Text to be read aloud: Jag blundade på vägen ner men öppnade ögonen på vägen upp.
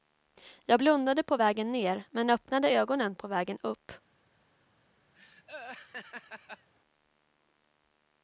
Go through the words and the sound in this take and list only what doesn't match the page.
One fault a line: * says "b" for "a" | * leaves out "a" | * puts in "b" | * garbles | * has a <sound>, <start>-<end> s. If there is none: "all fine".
* has a laugh, 5.1-6.7 s